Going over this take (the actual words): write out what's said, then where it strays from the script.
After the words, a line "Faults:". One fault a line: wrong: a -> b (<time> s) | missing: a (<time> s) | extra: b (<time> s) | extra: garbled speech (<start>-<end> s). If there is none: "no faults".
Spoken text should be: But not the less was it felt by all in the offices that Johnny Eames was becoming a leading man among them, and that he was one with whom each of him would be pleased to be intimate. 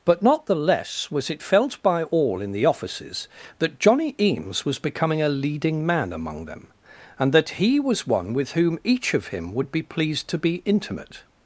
But not the less was it felt by all in the offices that Johnny Eames was becoming a leading man among them, and that he was one with whom each of him would be pleased to be intimate.
Faults:
no faults